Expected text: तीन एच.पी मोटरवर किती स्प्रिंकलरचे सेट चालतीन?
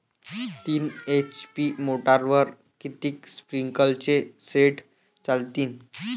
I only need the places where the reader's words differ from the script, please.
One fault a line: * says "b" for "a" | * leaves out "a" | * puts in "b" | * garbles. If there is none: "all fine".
all fine